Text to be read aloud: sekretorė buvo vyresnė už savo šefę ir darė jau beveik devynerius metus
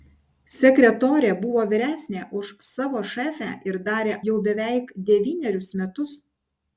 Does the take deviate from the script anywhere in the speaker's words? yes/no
no